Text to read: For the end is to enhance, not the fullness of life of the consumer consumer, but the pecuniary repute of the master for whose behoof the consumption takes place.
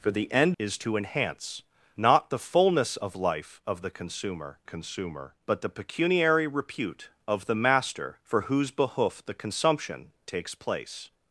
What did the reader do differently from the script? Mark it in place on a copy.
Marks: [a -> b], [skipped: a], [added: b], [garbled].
For the end is to enhance, not the fullness of life of the consumer consumer, but the pecuniary repute of the master for whose behoof the consumption takes place.